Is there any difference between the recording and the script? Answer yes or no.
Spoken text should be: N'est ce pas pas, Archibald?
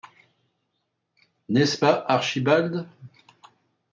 yes